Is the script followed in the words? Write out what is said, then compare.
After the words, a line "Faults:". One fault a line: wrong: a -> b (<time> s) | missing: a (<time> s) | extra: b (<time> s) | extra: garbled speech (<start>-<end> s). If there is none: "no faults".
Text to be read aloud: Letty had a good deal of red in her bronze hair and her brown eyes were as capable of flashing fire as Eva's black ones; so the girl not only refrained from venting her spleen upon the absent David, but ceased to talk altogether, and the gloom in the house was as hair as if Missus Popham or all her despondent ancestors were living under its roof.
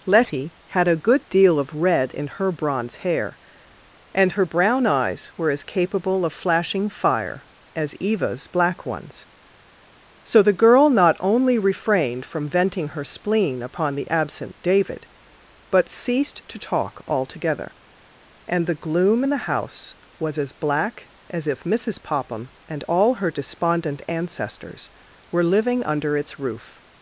Letty had a good deal of red in her bronze hair and her brown eyes were as capable of flashing fire as Eva's black ones; so the girl not only refrained from venting her spleen upon the absent David, but ceased to talk altogether, and the gloom in the house was as black as if Missus Popham and all her despondent ancestors were living under its roof.
Faults:
wrong: hair -> black (20.5 s)
wrong: or -> and (22.7 s)